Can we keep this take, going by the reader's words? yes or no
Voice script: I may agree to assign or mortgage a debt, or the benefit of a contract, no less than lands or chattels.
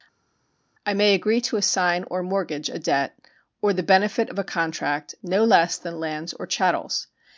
yes